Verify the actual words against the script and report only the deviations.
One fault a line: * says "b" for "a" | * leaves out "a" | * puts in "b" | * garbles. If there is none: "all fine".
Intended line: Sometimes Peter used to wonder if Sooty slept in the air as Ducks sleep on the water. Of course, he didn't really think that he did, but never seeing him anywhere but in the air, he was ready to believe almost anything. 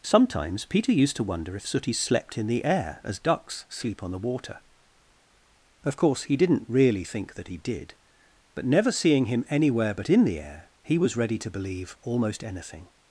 all fine